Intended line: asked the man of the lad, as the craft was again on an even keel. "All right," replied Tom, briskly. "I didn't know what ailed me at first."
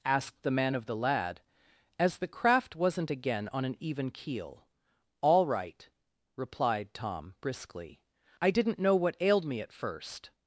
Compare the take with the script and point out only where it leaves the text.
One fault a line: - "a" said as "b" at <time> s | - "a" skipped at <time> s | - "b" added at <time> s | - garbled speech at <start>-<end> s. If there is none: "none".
- "was" said as "wasn't" at 2.8 s